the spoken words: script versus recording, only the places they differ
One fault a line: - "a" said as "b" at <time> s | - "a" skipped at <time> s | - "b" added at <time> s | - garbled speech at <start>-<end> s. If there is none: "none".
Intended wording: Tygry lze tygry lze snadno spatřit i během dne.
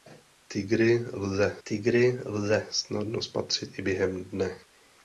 none